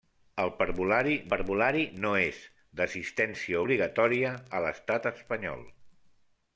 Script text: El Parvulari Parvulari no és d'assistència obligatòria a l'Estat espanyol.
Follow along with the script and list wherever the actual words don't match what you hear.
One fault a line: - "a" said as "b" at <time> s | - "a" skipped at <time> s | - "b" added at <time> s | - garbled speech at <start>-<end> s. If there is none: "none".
none